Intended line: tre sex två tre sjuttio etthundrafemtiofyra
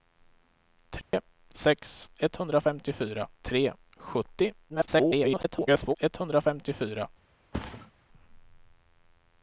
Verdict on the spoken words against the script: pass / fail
fail